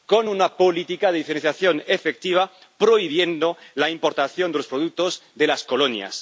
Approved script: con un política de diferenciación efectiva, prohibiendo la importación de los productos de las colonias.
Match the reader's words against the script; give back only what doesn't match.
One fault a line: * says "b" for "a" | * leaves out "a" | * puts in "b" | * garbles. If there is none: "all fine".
* says "una" for "un"